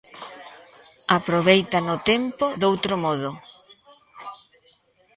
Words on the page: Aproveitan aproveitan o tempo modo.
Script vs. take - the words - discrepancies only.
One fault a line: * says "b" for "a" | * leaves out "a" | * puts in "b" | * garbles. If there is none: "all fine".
* leaves out "aproveitan"
* puts in "doutro"